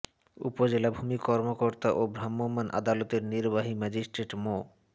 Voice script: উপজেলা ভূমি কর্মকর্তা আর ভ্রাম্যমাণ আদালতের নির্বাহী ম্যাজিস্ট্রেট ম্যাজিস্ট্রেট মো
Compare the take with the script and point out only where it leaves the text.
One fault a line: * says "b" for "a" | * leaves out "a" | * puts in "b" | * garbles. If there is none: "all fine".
* says "ও" for "আর"
* leaves out "ম্যাজিস্ট্রেট"